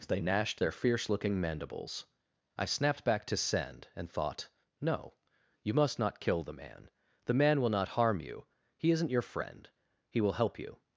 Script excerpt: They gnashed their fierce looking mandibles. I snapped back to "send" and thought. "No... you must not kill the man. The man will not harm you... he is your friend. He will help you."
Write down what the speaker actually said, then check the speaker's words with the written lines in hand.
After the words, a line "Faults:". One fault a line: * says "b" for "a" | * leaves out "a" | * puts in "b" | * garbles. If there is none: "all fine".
They gnashed their fierce looking mandibles. I snapped back to "send" and thought. "No... you must not kill the man. The man will not harm you... he isn't your friend. He will help you."
Faults:
* says "isn't" for "is"